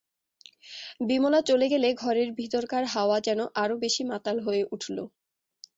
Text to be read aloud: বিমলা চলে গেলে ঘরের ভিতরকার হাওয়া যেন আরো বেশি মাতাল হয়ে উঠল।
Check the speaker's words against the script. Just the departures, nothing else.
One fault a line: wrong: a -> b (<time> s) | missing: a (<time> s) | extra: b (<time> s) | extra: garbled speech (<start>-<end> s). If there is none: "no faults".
no faults